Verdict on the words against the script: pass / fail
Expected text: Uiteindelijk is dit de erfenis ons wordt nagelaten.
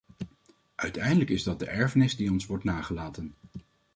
fail